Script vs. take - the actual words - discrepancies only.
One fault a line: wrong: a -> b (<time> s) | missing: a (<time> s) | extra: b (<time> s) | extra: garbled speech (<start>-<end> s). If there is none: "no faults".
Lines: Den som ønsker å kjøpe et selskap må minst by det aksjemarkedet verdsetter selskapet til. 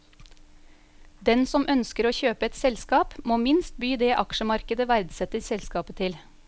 no faults